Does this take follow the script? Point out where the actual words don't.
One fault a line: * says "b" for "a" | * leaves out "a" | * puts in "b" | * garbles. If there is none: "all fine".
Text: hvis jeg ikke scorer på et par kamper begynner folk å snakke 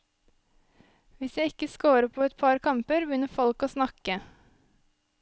all fine